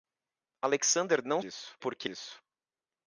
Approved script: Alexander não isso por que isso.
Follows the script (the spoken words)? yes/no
yes